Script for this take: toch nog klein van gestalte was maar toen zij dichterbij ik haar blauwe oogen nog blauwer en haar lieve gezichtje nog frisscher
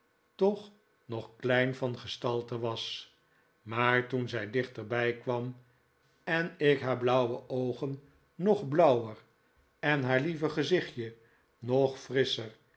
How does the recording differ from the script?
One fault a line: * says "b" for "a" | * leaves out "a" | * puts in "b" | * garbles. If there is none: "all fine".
* puts in "kwam en"